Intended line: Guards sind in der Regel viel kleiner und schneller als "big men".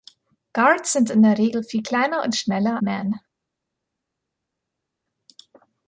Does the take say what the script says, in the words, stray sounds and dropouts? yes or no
no